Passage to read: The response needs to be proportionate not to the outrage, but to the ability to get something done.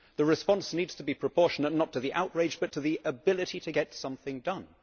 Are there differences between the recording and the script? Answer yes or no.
no